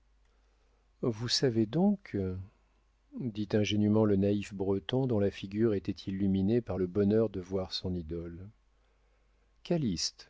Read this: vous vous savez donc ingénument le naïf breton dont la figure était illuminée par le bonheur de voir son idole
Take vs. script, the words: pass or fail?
fail